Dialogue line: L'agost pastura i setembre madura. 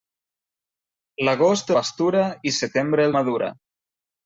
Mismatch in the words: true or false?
false